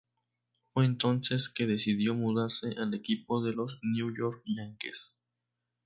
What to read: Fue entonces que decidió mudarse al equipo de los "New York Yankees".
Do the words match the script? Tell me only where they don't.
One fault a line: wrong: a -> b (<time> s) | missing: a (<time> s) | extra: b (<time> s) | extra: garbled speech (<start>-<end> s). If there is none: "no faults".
no faults